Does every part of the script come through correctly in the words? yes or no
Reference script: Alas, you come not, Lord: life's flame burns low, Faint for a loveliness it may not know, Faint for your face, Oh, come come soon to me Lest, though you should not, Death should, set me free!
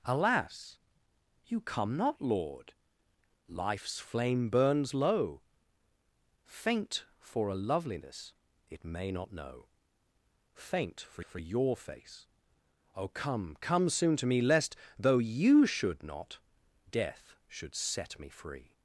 no